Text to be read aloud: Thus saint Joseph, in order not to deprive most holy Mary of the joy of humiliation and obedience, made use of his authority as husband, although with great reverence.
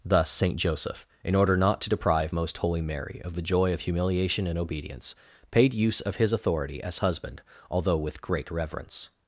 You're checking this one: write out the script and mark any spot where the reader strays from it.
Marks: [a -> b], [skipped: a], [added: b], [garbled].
Thus saint Joseph, in order not to deprive most holy Mary of the joy of humiliation and obedience, [made -> paid] use of his authority as husband, although with great reverence.